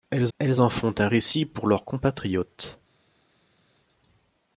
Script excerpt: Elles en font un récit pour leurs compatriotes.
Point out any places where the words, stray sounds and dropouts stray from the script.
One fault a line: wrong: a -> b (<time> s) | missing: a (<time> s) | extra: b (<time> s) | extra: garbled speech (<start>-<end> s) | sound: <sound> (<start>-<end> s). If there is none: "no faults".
extra: elles (0.4 s)